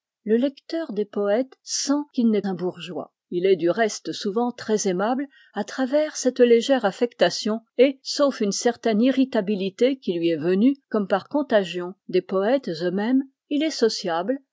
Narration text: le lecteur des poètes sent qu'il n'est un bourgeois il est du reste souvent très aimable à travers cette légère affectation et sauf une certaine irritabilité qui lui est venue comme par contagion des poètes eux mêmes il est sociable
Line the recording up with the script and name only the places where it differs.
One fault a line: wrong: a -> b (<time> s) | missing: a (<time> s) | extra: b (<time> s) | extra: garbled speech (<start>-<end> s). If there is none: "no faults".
no faults